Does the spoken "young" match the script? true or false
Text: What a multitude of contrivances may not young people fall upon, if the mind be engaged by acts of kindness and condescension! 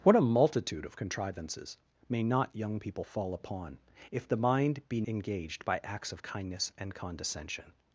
true